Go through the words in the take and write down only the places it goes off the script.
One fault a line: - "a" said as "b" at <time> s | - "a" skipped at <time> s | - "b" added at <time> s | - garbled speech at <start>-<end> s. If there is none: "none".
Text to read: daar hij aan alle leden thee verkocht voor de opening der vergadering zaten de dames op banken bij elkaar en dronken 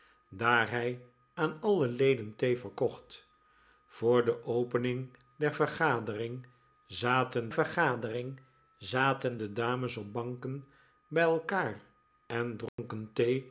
- "vergadering zaten" added at 7.5 s